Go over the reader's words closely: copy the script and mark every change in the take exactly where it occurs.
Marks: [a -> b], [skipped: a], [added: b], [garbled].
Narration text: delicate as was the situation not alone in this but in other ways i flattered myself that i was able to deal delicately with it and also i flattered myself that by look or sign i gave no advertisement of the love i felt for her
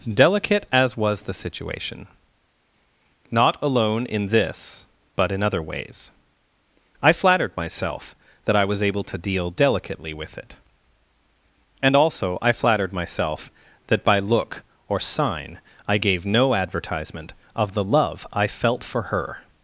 delicate as was the situation not alone in this but in other ways i flattered myself that i was able to deal delicately with it and also i flattered myself that by look or sign i gave no advertisement of the love i felt for her